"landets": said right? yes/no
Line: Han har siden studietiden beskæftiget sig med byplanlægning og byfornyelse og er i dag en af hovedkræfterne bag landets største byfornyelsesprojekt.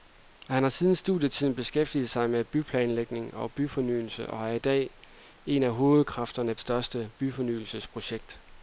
no